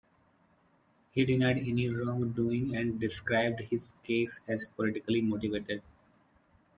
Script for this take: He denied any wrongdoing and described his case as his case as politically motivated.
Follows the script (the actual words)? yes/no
no